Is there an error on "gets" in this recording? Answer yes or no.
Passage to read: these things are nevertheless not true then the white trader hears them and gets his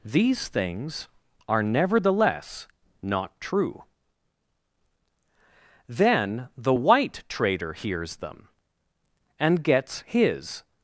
no